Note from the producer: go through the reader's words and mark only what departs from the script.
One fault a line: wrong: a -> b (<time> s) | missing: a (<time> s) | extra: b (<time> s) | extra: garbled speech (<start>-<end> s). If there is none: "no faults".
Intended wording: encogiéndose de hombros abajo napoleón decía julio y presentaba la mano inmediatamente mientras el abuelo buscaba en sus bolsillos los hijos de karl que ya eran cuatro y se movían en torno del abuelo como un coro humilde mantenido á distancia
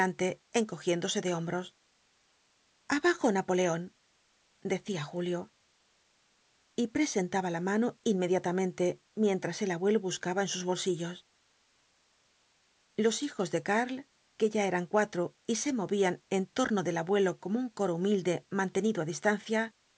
no faults